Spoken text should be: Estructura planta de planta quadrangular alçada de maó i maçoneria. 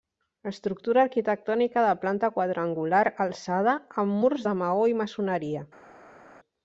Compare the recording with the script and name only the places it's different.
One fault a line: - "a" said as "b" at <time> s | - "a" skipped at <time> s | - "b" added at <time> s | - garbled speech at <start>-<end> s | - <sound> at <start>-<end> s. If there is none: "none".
- "planta" said as "arquitectònica" at 1.1 s
- "amb murs" added at 4.0 s